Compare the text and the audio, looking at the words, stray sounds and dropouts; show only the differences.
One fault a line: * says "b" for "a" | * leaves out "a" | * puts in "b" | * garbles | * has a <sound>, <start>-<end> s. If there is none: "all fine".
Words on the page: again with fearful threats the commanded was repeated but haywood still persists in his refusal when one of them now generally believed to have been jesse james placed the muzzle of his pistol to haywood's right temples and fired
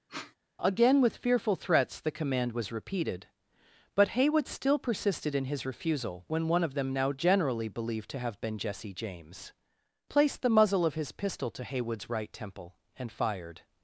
* has a sniff, 0.1-0.4 s
* says "command" for "commanded"
* says "persisted" for "persists"
* says "temple" for "temples"